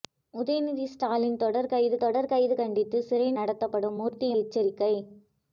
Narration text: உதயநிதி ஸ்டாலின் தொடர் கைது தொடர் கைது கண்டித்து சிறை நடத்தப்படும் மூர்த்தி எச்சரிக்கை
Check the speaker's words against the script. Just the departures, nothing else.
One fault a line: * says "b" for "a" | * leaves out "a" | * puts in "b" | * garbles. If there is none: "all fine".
all fine